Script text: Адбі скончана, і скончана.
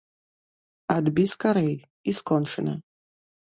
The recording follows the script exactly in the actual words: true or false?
false